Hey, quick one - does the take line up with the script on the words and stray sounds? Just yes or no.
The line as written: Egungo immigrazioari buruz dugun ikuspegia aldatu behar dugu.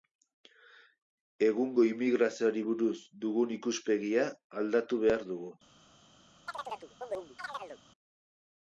no